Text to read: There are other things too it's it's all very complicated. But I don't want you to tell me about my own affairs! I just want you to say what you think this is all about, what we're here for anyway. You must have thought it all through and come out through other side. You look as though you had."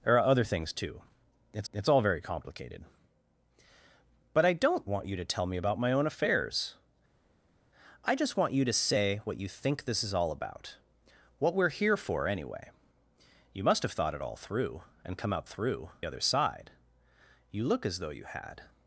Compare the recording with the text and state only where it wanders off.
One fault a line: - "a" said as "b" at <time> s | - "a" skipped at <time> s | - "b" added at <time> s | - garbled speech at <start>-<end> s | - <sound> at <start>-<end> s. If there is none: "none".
none